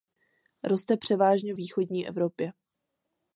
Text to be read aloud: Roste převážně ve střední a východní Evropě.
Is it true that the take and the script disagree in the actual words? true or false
true